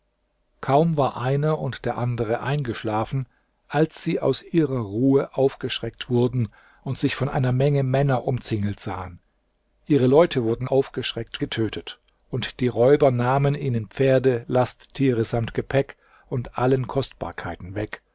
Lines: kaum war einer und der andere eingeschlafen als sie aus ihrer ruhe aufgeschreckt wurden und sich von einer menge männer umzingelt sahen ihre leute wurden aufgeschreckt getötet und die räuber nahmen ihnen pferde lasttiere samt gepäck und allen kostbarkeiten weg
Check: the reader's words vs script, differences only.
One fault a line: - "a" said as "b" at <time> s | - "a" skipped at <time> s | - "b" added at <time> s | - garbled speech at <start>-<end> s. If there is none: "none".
none